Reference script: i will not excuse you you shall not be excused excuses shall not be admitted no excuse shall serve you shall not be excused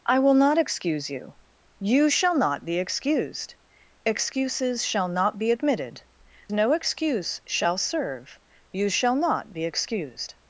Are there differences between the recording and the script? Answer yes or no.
no